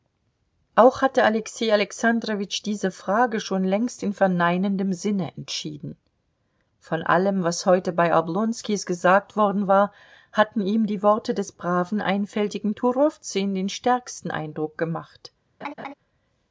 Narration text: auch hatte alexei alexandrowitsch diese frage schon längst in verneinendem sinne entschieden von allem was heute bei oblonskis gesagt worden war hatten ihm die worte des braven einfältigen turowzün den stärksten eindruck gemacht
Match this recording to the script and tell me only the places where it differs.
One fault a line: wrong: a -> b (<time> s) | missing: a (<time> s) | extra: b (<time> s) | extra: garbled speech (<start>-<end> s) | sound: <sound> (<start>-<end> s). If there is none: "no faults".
sound: laugh (15.6-15.9 s)